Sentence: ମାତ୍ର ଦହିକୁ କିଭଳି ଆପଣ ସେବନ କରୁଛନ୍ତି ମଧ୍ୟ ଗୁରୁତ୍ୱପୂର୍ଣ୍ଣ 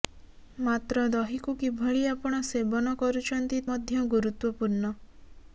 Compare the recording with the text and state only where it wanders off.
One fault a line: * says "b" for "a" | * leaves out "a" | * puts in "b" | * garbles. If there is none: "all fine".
all fine